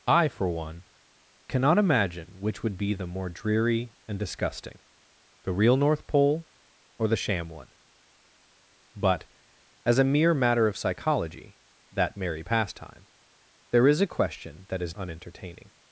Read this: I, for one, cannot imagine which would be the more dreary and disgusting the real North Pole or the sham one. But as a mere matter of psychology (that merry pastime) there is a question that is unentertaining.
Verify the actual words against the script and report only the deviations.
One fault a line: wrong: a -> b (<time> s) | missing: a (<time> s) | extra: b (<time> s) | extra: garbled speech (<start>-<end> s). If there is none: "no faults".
no faults